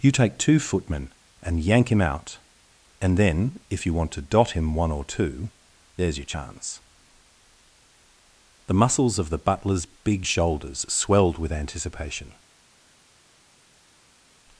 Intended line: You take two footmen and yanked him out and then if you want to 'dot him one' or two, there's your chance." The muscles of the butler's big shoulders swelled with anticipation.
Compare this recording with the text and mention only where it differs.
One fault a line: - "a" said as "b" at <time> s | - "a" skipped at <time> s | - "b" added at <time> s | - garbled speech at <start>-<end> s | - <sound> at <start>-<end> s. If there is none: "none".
- "yanked" said as "yank" at 1.6 s